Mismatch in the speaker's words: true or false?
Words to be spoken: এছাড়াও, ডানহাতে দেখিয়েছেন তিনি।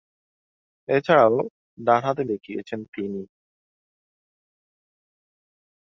false